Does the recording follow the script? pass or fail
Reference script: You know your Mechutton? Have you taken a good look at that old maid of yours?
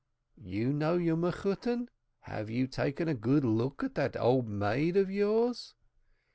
pass